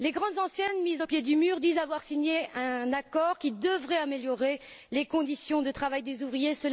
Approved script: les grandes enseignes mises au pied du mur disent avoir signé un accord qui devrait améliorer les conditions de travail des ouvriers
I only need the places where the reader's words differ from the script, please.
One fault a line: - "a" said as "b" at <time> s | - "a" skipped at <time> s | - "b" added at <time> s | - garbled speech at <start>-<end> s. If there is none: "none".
none